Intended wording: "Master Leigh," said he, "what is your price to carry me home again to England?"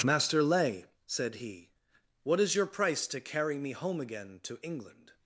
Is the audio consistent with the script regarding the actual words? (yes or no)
yes